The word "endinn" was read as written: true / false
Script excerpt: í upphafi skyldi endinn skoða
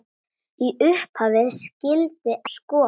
false